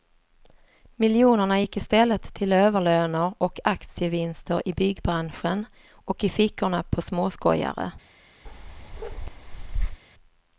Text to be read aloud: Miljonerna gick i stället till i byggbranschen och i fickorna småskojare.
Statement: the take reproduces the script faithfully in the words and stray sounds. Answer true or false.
false